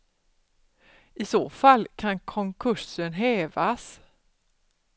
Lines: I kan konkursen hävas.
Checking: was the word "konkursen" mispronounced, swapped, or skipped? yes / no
no